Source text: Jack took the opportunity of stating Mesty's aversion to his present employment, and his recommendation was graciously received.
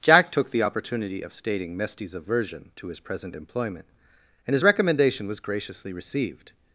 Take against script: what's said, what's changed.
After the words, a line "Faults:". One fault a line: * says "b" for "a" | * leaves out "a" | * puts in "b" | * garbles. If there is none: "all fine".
Jack took the opportunity of stating Mesty's aversion to his present employment, and his recommendation was graciously received.
Faults:
all fine